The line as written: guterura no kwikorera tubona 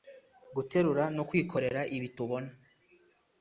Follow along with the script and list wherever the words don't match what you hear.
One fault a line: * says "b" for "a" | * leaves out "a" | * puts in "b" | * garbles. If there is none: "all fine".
* puts in "ibi"